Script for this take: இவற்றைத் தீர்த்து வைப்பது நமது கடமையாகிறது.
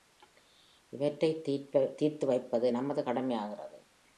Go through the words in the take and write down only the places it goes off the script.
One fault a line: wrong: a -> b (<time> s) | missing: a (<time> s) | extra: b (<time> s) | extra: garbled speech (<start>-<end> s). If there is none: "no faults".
no faults